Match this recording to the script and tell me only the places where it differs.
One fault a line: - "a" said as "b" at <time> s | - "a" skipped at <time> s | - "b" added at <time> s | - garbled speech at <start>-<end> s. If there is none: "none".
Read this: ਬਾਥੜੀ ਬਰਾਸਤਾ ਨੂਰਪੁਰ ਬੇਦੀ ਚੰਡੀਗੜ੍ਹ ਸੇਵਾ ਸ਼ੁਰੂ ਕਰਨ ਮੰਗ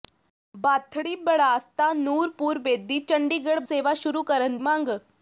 none